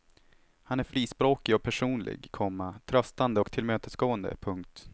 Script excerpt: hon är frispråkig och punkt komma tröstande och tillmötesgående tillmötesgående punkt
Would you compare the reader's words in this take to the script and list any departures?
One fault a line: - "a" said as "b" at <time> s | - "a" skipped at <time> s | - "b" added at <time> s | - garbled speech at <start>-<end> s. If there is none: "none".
- "hon" said as "han" at 0.6 s
- "punkt" said as "personlig" at 1.6 s
- "tillmötesgående" skipped at 4.4 s